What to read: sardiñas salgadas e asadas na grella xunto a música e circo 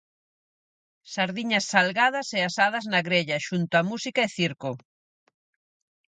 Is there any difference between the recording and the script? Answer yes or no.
no